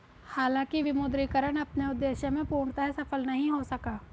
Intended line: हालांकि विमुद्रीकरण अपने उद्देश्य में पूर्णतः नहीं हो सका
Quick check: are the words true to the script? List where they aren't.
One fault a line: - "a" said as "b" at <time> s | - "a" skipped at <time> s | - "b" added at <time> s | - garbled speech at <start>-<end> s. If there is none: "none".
- "सफल" added at 2.9 s